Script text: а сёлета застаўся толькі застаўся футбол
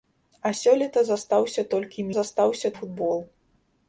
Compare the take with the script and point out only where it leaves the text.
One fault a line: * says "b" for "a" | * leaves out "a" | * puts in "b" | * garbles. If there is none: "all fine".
all fine